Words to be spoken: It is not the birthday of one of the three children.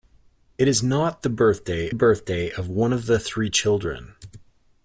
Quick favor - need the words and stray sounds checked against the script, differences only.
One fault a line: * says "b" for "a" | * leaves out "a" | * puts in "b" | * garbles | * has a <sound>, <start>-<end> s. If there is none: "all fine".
* puts in "birthday"